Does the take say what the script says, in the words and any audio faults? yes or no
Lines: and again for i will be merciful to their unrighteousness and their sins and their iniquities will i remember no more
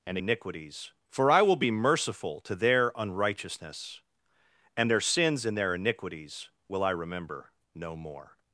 no